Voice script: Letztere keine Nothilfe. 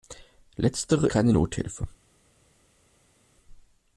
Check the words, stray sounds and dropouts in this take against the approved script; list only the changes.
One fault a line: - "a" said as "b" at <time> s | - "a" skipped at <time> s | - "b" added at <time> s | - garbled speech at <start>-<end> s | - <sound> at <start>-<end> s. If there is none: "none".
none